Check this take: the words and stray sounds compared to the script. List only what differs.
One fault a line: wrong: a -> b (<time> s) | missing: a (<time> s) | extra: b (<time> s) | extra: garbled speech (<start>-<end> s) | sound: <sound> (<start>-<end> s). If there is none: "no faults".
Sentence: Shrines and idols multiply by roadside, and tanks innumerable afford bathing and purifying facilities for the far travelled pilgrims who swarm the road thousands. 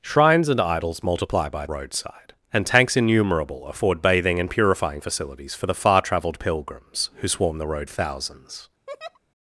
sound: laugh (8.9-9.2 s)